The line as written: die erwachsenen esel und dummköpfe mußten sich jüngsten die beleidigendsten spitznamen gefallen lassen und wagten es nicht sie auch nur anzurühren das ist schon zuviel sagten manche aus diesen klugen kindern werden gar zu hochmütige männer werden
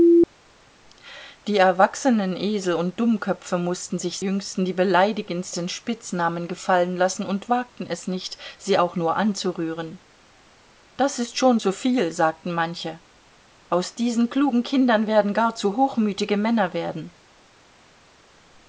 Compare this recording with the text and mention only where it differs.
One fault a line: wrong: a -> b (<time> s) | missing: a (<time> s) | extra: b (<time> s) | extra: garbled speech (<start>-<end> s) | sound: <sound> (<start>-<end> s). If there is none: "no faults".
no faults